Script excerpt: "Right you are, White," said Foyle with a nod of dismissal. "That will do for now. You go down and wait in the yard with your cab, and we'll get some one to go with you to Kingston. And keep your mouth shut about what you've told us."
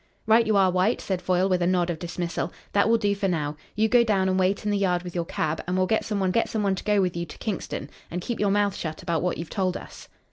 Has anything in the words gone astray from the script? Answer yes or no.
yes